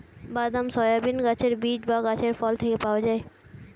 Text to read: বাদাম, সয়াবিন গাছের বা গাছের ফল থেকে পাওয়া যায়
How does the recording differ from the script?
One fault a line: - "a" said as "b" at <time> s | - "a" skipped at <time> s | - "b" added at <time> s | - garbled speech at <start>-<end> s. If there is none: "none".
- "বীজ" added at 1.6 s